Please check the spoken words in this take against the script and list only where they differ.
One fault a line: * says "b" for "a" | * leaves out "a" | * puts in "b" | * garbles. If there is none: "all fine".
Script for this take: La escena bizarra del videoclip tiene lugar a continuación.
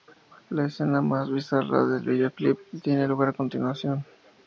* puts in "más"